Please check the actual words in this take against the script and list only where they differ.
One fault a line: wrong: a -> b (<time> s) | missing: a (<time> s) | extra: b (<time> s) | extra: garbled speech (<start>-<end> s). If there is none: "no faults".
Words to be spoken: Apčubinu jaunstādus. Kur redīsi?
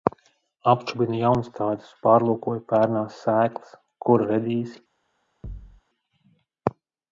extra: pārlūkoju pērnās sēklas (2.1 s)